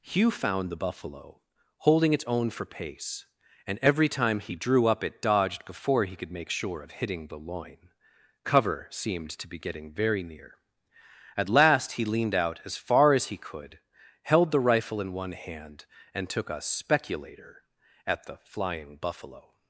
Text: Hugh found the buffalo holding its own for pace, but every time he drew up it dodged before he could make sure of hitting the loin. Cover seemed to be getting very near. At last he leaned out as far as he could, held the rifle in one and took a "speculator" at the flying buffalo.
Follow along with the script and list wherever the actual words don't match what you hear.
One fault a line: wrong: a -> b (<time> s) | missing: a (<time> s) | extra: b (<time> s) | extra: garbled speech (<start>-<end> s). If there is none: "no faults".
wrong: but -> and (3.6 s)
extra: hand (15.3 s)